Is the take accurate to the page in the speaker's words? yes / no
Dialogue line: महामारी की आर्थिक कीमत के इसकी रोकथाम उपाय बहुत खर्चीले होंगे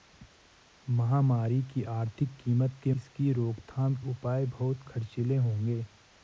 yes